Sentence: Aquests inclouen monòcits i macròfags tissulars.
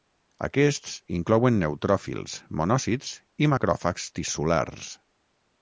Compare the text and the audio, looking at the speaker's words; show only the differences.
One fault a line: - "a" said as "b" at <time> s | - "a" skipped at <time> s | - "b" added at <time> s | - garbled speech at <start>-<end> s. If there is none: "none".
- "neutròfils" added at 1.6 s